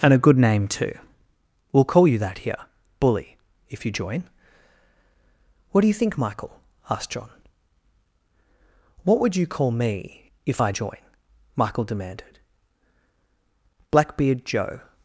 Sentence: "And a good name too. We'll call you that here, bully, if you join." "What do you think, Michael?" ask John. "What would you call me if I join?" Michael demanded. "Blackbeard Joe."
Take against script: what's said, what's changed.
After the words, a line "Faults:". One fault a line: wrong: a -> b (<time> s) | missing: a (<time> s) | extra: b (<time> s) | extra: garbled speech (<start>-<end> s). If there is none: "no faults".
"And a good name too. We'll call you that here, bully, if you join." "What do you think, Michael?" asked John. "What would you call me if I join?" Michael demanded. "Blackbeard Joe."
Faults:
wrong: ask -> asked (6.9 s)